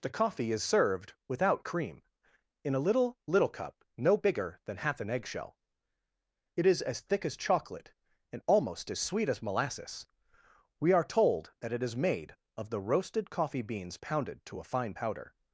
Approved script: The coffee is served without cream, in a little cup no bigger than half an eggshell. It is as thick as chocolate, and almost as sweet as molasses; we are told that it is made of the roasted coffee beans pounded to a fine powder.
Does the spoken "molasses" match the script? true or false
true